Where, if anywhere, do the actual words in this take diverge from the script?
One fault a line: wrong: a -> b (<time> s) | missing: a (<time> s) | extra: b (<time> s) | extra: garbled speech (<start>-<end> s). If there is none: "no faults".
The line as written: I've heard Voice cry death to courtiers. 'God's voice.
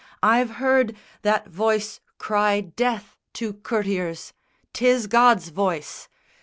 extra: That (1.2 s)
extra: Tis (4.7 s)